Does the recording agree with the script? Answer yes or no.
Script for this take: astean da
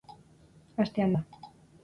yes